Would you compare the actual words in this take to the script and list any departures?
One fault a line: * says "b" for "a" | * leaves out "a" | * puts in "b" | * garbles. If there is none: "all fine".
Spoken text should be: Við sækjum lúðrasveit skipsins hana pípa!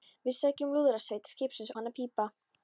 all fine